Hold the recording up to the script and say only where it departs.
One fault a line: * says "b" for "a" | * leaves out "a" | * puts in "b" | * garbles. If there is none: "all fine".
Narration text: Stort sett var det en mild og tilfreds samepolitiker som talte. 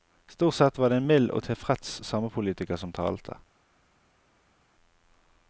all fine